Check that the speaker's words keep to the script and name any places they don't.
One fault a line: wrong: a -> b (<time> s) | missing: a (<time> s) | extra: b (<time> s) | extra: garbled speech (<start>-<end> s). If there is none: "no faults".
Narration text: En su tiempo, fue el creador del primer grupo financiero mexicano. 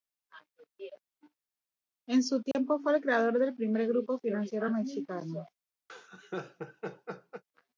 no faults